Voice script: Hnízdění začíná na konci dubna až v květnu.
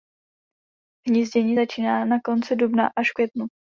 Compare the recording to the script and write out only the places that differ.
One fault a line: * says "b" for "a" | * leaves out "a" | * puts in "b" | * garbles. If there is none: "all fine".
all fine